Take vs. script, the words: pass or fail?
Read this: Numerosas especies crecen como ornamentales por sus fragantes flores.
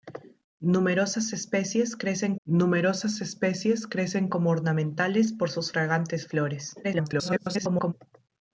fail